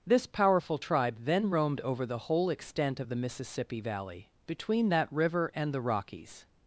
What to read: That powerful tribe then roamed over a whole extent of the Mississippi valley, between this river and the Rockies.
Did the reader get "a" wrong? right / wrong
wrong